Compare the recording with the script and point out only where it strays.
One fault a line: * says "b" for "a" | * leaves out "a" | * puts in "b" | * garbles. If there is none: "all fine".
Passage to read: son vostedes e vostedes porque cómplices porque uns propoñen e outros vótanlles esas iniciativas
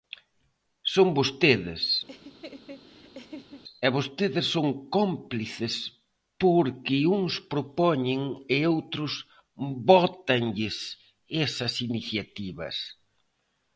* says "son" for "porque"